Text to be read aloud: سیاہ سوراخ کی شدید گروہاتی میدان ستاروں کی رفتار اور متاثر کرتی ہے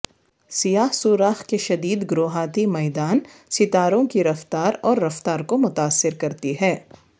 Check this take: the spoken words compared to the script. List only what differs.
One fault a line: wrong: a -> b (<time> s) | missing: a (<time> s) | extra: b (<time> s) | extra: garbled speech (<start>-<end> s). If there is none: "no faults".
wrong: کی -> کے (1.4 s)
extra: رفتار کو (5.0 s)